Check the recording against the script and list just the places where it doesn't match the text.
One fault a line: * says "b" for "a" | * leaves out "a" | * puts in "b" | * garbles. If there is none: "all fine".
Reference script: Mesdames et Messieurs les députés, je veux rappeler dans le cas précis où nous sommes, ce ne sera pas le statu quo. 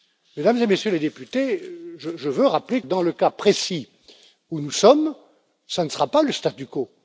all fine